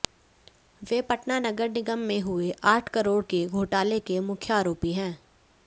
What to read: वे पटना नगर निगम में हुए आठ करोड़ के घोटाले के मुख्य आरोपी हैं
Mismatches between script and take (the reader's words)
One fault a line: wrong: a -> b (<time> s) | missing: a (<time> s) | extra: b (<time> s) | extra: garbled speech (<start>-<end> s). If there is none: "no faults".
no faults